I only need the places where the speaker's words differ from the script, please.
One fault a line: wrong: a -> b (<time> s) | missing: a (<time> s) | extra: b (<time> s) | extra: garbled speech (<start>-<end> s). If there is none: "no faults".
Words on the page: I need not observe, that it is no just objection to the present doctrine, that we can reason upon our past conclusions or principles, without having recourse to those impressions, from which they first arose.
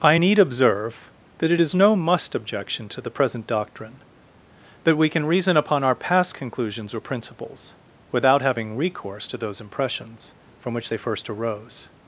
missing: not (0.4 s)
wrong: just -> must (2.0 s)